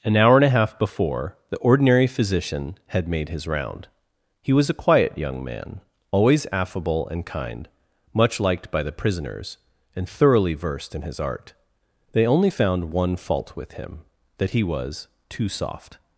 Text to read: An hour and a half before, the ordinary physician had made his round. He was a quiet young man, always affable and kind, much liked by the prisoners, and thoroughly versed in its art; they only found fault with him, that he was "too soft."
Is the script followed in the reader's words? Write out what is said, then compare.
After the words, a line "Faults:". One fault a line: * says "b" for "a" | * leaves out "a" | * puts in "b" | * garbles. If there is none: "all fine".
An hour and a half before, the ordinary physician had made his round. He was a quiet young man, always affable and kind, much liked by the prisoners, and thoroughly versed in his art; they only found one fault with him, that he was "too soft."
Faults:
* says "his" for "its"
* puts in "one"